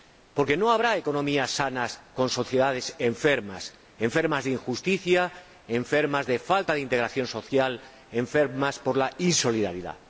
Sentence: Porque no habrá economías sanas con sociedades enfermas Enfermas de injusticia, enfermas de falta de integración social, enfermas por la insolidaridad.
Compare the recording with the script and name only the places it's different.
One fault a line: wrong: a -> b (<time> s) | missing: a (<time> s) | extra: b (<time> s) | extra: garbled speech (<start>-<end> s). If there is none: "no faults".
no faults